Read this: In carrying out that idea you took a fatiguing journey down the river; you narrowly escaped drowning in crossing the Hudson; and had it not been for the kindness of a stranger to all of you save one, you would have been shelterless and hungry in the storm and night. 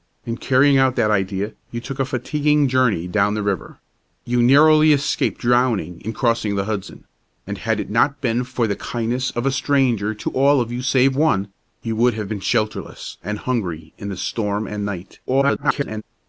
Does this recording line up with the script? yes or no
no